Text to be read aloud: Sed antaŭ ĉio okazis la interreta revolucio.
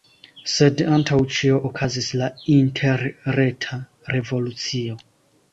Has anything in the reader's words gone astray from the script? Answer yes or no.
no